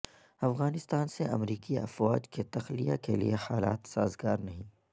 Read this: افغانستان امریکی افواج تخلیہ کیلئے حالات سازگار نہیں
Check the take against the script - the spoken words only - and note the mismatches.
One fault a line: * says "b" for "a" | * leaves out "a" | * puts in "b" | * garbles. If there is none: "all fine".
* puts in "سے"
* puts in "کے"